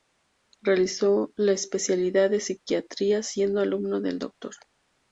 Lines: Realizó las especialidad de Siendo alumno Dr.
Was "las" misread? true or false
true